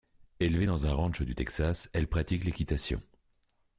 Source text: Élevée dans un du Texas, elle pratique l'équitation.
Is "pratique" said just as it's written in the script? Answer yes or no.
yes